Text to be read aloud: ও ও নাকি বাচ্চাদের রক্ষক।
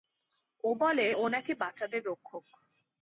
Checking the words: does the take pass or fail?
fail